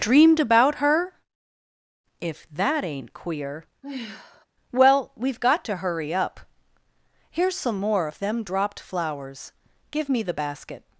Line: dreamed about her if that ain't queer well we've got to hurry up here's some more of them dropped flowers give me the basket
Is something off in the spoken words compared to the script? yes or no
no